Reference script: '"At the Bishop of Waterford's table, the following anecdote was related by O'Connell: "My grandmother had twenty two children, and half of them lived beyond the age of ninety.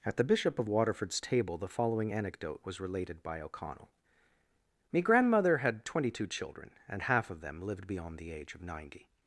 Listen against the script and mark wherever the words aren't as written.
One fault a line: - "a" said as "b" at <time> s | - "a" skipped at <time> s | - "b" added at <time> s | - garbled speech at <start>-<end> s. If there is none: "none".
- "My" said as "Me" at 4.9 s